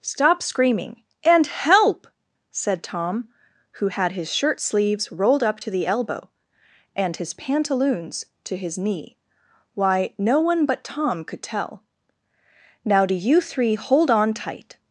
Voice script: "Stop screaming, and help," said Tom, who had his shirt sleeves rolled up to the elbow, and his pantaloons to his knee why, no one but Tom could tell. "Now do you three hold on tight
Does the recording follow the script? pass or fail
pass